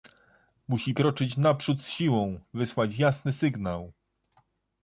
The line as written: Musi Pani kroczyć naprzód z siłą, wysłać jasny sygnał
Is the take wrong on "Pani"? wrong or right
wrong